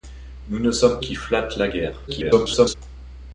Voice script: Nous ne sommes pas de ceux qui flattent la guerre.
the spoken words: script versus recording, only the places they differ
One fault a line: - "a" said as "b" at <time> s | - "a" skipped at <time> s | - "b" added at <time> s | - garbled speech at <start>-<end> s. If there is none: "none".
- "pas de ceux" skipped at 1.0 s
- garbled speech at 2.1-2.7 s